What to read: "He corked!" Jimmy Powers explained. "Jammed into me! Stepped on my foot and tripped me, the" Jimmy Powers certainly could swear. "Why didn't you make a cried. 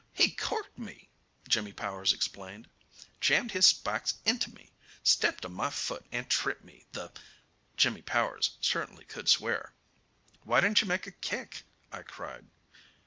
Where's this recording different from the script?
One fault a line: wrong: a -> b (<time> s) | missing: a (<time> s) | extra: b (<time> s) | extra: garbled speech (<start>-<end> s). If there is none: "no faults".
extra: me (0.8 s)
extra: his spikes (3.5 s)
extra: kick I (11.1 s)